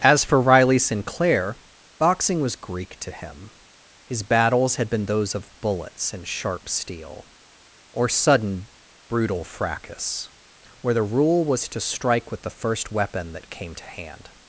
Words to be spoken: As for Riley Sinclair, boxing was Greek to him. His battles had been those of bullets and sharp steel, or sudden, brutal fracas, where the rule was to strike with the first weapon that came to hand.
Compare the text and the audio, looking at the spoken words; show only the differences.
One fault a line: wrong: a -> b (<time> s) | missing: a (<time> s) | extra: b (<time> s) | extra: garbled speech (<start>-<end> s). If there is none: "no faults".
no faults